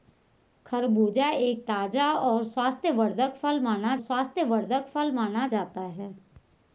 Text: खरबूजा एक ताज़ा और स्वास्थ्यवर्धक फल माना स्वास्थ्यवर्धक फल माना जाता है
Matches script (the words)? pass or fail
pass